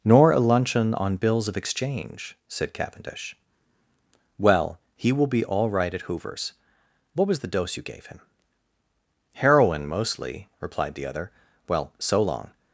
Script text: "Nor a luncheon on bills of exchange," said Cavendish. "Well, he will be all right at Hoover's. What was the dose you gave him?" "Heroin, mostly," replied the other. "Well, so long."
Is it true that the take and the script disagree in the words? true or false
false